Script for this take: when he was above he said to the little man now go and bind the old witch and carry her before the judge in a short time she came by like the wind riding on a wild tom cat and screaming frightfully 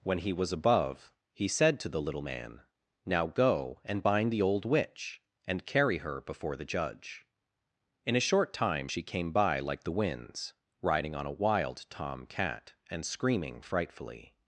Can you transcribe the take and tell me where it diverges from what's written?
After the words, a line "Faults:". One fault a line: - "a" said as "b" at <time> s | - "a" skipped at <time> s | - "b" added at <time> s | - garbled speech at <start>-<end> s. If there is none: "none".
when he was above he said to the little man now go and bind the old witch and carry her before the judge in a short time she came by like the winds riding on a wild tom cat and screaming frightfully
Faults:
- "wind" said as "winds" at 9.9 s